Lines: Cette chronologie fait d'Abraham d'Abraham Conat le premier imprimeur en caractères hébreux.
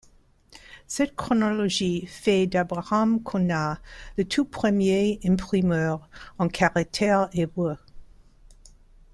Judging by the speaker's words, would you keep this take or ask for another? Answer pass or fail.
fail